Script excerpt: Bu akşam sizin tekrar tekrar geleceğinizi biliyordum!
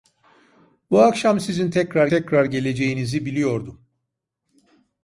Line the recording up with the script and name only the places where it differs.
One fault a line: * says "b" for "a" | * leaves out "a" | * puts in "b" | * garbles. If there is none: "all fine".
all fine